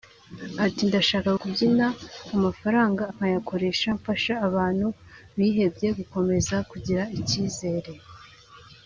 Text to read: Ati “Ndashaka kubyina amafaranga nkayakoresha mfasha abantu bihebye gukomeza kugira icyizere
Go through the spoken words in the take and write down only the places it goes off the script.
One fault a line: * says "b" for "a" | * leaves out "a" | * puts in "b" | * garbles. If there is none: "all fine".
all fine